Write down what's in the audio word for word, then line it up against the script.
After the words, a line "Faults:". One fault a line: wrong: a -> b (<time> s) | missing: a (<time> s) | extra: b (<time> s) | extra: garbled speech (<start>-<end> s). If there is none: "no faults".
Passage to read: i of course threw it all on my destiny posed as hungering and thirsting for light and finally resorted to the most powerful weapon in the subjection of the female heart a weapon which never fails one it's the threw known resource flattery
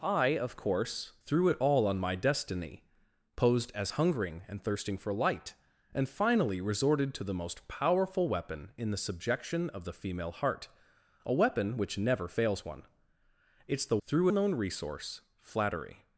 i of course threw it all on my destiny posed as hungering and thirsting for light and finally resorted to the most powerful weapon in the subjection of the female heart a weapon which never fails one it's the threw known resource flattery
Faults:
no faults